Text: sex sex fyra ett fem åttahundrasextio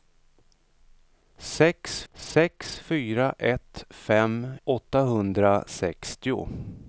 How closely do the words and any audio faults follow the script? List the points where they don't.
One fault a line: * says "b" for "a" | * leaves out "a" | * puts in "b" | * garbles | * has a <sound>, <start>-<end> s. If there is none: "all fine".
all fine